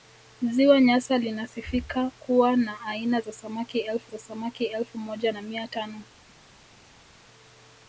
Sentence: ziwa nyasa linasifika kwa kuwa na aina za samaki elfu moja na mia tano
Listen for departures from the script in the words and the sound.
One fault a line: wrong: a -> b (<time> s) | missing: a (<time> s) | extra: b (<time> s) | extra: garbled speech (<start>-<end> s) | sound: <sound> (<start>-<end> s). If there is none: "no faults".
missing: kwa (2.1 s)
extra: za samaki elfu (4.1 s)